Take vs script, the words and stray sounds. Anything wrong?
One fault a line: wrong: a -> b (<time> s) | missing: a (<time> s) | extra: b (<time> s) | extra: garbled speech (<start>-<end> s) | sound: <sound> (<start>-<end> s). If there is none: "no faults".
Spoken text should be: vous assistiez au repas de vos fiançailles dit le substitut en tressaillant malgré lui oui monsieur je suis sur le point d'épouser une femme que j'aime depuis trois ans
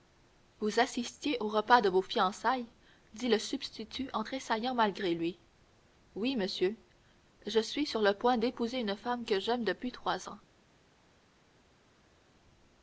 no faults